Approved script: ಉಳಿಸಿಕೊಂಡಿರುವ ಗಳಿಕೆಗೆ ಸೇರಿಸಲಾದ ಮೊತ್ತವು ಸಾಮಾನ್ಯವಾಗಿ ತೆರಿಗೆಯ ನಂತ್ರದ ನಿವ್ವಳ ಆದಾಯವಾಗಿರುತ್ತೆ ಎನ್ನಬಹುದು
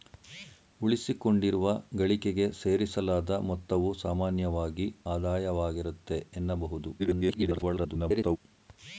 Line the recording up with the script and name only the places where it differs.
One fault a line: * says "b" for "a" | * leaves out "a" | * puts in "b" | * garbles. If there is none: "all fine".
* leaves out "ತೆರಿಗೆಯ ನಂತ್ರದ ನಿವ್ವಳ"
* garbles